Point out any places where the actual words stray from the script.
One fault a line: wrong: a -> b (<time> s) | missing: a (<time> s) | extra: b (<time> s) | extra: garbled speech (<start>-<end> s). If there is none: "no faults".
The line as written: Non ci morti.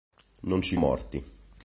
no faults